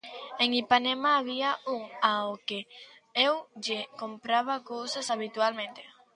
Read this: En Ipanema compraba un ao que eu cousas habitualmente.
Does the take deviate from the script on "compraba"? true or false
true